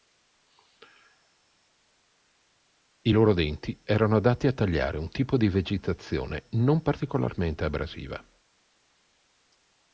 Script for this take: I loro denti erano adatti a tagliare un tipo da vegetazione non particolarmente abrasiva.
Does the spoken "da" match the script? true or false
false